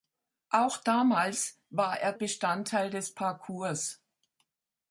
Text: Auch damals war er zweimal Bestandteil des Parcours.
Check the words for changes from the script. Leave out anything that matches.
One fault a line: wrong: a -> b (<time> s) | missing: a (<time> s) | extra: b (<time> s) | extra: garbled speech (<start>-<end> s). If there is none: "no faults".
missing: zweimal (2.2 s)